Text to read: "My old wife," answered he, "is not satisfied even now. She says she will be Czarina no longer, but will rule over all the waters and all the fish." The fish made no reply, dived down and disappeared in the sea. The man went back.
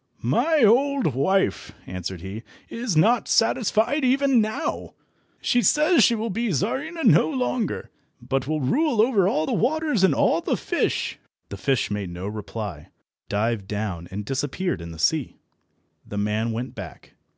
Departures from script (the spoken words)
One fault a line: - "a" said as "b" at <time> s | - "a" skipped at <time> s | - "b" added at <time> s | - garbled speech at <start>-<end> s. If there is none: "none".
none